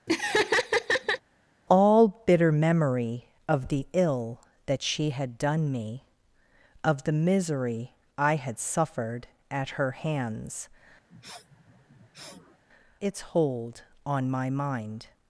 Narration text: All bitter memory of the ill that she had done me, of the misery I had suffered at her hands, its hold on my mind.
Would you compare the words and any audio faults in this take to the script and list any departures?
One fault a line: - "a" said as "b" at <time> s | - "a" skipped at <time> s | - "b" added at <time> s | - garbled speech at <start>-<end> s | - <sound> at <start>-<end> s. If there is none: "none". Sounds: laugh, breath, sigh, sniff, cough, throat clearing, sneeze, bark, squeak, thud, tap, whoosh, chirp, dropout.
- laugh at 0.1-1.2 s
- sniff at 11.1-12.6 s